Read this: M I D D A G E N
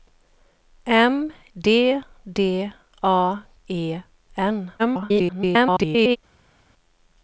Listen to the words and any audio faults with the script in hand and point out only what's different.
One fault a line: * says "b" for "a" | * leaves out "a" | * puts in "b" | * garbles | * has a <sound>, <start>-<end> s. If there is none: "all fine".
* leaves out "I"
* leaves out "G"
* garbles